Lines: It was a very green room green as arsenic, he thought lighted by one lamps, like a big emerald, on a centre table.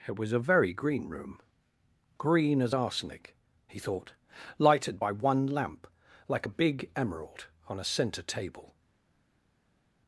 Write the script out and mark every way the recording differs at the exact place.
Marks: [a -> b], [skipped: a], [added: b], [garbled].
It was a very green room green as arsenic, he thought lighted by one [lamps, -> lamp] like a big emerald, on a centre table.